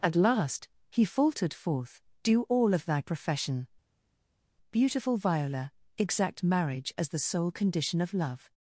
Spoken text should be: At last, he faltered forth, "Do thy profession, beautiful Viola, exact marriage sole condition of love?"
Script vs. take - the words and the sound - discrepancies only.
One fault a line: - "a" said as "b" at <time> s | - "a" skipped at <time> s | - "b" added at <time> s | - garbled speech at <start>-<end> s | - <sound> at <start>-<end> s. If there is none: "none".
- "all of" added at 2.4 s
- "as the" added at 7.0 s